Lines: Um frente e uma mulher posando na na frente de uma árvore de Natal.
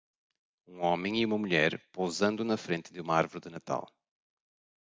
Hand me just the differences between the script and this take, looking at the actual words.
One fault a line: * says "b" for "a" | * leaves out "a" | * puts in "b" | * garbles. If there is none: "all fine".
* says "homem" for "frente"
* leaves out "na"